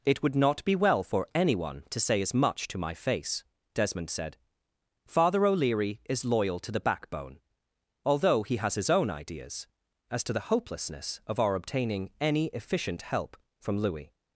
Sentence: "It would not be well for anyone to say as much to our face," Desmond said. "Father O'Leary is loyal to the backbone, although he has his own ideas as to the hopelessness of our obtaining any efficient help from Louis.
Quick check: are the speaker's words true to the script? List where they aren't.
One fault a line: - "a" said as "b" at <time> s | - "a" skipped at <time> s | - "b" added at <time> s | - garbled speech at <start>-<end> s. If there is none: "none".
- "our" said as "my" at 2.8 s